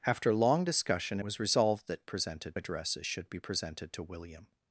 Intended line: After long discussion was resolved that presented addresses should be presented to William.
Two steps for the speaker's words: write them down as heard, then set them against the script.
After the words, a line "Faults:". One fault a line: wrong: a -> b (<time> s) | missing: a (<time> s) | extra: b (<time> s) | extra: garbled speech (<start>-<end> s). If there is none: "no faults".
After long discussion was resolved that presented addresses should be presented to William.
Faults:
no faults